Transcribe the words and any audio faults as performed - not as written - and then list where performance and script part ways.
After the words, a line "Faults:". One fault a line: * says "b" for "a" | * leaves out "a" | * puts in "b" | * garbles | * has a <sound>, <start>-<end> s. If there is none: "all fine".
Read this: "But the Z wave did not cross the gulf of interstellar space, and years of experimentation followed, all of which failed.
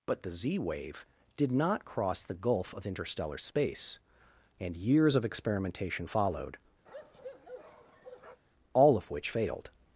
"But the Z wave did not cross the gulf of interstellar space, and years of experimentation followed, all of which failed.
Faults:
* has a bark, 6.9-8.4 s